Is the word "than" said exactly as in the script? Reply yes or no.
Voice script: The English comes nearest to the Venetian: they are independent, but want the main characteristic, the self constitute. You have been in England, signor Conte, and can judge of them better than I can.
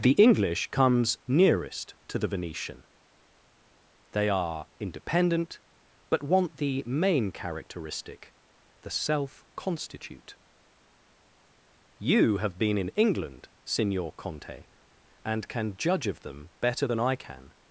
yes